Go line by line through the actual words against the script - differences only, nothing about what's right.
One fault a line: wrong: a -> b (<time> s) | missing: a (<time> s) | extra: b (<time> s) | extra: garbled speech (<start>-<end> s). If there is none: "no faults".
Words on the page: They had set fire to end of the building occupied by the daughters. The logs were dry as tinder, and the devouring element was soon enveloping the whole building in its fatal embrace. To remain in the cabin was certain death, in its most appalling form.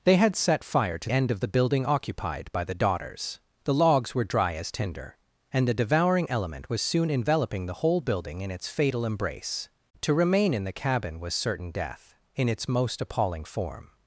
no faults